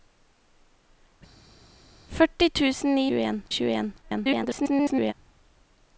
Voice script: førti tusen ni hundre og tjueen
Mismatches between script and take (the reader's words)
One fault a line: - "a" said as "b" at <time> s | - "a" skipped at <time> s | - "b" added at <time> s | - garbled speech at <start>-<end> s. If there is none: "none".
- "hundre" said as "tjueen" at 3.1 s
- garbled speech at 4.0-5.1 s